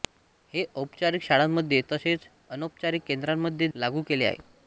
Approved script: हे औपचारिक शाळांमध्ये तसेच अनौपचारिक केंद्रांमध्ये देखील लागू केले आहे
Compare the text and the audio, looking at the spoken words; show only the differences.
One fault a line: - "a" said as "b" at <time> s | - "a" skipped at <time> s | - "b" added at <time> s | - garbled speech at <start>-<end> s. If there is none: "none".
- "देखील" skipped at 3.7 s